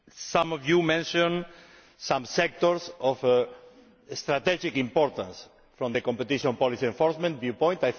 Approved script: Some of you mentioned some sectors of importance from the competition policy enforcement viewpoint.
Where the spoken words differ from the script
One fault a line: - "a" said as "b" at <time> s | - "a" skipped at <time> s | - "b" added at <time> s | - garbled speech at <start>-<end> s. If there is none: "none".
- "strategic" added at 4.1 s